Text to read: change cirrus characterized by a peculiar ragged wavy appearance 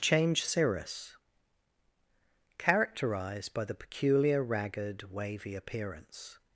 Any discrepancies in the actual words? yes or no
yes